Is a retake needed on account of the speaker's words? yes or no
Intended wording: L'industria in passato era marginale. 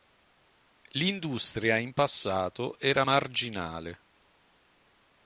no